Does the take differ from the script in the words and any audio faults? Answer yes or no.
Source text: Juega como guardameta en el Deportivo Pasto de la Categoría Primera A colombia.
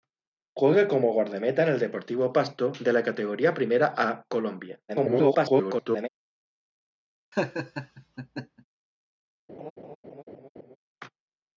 yes